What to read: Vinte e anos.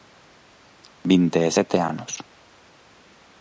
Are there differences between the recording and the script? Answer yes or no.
yes